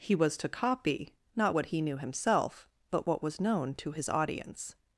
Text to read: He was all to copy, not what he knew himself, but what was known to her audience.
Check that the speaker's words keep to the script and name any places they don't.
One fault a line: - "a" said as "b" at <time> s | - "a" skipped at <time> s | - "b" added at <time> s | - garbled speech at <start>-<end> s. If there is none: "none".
- "all" skipped at 0.3 s
- "her" said as "his" at 3.9 s